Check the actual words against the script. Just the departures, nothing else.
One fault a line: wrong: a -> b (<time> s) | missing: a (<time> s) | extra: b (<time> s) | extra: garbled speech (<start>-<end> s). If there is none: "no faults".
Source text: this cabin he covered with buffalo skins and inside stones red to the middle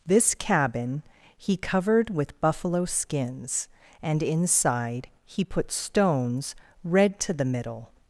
extra: he put (5.3 s)